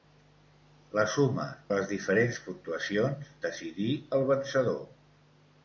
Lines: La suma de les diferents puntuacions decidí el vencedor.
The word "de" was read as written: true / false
false